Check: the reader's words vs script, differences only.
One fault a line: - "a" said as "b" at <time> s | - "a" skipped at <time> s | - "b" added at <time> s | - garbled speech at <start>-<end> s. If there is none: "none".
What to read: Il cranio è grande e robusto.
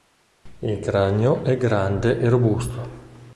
none